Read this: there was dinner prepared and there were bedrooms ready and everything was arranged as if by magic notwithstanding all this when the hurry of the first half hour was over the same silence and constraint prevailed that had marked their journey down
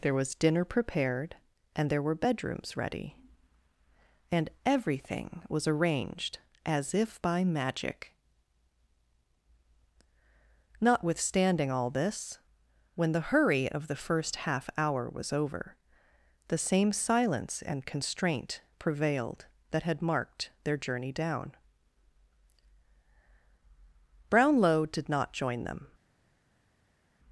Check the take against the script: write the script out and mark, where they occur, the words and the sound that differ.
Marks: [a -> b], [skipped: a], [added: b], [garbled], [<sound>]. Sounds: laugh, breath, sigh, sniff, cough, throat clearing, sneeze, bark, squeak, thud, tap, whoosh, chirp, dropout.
there was dinner prepared and there were bedrooms ready and everything was arranged as if by magic notwithstanding all this when the hurry of the first half hour was over the same silence and constraint prevailed that had marked their journey down [added: brownlow did not join them]